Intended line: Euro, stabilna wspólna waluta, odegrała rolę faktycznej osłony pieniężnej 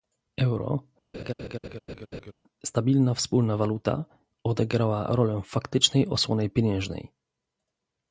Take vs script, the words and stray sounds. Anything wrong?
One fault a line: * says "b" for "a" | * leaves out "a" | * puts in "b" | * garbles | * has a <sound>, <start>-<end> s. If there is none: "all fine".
* has a laugh, 1.1-2.3 s